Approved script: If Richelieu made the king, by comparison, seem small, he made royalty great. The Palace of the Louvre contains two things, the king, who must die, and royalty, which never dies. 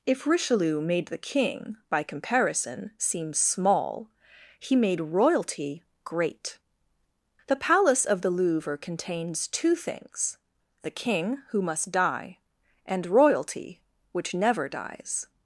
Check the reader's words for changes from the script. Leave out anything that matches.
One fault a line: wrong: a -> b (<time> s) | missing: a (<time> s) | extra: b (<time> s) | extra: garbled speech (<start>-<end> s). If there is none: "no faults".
no faults